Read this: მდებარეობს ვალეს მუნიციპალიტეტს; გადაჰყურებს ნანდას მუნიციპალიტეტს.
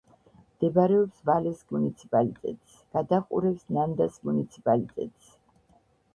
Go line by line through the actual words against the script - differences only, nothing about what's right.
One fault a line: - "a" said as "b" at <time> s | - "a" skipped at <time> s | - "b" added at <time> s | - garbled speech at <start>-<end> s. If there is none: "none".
none